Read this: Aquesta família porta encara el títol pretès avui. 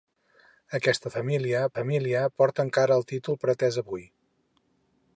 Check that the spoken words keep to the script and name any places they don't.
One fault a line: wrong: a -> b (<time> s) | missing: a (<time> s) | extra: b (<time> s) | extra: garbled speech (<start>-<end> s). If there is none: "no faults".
extra: família (1.8 s)